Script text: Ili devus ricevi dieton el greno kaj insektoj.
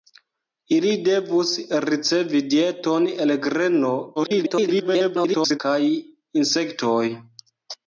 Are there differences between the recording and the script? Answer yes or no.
yes